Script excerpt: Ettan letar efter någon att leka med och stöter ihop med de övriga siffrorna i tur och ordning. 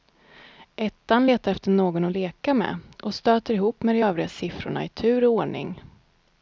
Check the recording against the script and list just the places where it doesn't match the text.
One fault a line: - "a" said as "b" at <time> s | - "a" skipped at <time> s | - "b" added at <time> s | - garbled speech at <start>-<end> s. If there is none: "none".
none